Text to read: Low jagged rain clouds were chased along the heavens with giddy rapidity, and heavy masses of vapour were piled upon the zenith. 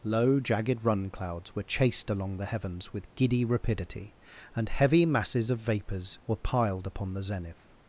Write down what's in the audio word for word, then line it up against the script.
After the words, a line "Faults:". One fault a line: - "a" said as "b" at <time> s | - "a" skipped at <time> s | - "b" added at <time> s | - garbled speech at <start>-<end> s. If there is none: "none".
Low jagged run clouds were chased along the heavens with giddy rapidity, and heavy masses of vapours were piled upon the zenith.
Faults:
- "rain" said as "run" at 0.8 s
- "vapour" said as "vapours" at 5.6 s